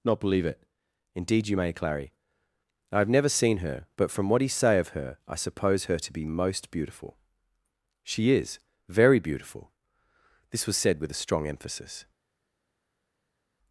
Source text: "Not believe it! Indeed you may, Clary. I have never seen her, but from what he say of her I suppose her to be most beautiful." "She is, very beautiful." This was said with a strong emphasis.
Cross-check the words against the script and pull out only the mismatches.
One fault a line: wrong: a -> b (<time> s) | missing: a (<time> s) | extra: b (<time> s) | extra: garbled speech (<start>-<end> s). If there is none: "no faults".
no faults